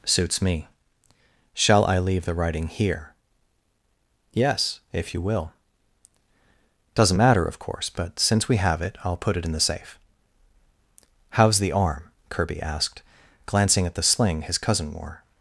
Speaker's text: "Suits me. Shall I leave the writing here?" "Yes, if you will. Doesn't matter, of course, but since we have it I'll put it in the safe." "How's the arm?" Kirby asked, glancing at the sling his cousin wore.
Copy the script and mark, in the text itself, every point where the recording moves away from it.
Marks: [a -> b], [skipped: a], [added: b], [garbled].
"Suits me. Shall I leave the writing here?" "Yes, if you will. Doesn't matter, of course, but since we have it I'll put it in the safe." "How's the arm?" Kirby asked, glancing at the sling his cousin wore.